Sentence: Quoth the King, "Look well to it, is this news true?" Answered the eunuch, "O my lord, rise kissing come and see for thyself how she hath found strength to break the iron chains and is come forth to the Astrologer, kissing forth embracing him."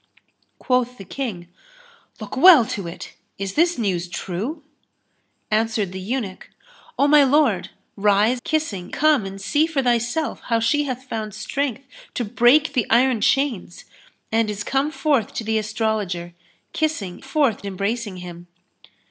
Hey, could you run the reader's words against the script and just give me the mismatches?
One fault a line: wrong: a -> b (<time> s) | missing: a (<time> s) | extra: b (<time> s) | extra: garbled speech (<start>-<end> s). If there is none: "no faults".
no faults